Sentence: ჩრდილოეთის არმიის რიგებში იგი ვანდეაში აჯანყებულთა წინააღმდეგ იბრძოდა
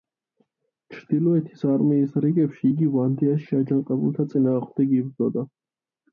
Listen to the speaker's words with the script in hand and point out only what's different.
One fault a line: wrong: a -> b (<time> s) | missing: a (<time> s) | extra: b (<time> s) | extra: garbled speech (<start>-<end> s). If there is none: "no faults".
no faults